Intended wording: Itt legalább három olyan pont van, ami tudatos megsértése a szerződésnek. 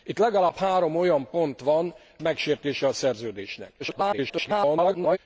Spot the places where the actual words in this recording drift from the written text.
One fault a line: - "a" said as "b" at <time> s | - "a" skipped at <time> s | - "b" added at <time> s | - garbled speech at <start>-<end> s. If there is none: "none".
- "ami tudatos" skipped at 1.9 s
- garbled speech at 3.8-5.2 s